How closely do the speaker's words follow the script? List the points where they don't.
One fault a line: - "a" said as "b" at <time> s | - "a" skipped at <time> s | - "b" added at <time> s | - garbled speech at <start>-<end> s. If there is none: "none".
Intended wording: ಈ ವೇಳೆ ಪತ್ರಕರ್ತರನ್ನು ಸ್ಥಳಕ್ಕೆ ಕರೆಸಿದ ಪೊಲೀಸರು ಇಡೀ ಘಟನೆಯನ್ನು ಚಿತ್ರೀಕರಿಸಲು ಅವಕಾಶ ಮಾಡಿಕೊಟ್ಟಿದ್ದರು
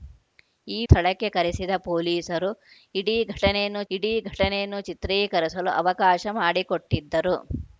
- "ವೇಳೆ ಪತ್ರಕರ್ತರನ್ನು" skipped at 0.8 s
- "ಇಡೀ ಘಟನೆಯನ್ನು" added at 3.9 s